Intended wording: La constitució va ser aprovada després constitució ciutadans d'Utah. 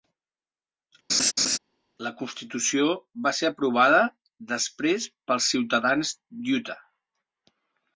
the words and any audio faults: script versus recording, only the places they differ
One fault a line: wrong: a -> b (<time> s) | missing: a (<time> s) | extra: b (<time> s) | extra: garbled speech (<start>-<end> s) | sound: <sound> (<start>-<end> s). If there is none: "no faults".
sound: laugh (1.1-1.6 s)
wrong: constitució -> pels (5.3 s)